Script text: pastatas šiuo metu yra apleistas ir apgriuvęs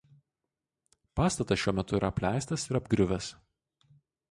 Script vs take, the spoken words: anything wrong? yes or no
no